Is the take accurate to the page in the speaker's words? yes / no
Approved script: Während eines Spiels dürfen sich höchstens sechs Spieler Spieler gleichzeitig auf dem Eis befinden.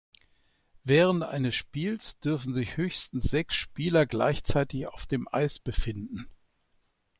no